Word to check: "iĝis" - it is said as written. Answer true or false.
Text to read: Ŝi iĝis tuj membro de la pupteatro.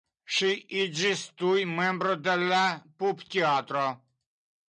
true